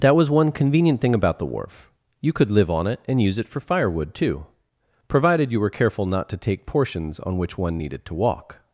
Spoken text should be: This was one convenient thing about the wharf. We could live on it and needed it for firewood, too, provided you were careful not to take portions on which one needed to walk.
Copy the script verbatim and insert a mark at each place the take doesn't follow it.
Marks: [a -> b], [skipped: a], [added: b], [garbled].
[This -> That] was one convenient thing about the wharf. [We -> You] could live on it and [needed -> use] it for firewood, too, provided you were careful not to take portions on which one needed to walk.